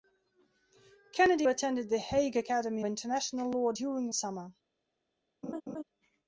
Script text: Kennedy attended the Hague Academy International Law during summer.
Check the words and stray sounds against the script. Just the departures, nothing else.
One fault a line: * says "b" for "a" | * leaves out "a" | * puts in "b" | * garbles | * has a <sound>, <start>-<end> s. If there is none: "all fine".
* has a laugh, 5.4-5.8 s